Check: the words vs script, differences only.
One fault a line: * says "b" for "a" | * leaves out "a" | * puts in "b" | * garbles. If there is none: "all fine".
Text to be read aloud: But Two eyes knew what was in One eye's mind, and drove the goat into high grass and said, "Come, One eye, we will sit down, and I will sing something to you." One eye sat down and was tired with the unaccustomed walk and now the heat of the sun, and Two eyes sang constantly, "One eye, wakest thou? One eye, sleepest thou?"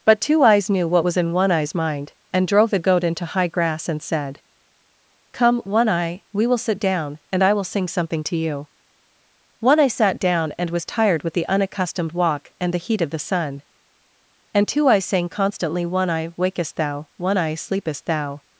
* leaves out "now"